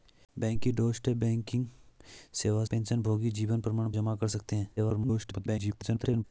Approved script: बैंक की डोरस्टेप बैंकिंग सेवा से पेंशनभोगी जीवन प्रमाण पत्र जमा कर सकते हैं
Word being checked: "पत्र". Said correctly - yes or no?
no